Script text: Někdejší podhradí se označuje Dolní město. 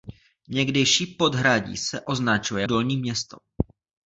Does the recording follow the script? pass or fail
pass